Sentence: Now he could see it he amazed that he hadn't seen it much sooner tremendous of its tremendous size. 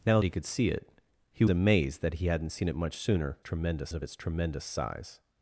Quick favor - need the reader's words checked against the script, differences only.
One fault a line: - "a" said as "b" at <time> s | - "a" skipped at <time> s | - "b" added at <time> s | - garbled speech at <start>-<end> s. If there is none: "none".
none